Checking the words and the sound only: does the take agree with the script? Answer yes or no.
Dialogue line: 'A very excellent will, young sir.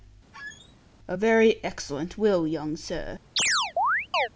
no